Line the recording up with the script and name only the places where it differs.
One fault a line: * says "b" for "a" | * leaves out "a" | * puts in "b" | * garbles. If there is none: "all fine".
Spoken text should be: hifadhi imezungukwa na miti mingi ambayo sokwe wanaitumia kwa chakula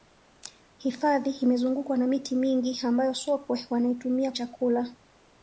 * leaves out "kwa"